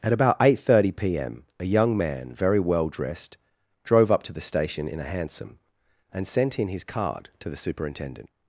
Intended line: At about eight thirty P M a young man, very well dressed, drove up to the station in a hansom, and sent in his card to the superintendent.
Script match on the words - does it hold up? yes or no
yes